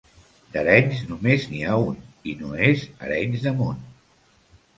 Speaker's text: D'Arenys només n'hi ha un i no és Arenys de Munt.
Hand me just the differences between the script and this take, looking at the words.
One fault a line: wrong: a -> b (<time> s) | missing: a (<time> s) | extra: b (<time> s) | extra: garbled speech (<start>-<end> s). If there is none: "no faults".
no faults